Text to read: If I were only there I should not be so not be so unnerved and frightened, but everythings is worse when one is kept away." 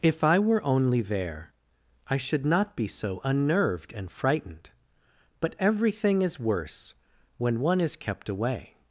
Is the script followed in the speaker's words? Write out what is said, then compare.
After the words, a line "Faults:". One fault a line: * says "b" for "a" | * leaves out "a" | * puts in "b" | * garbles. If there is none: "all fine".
If I were only there I should not be so unnerved and frightened, but everything is worse when one is kept away."
Faults:
* leaves out "not be so"
* says "everything" for "everythings"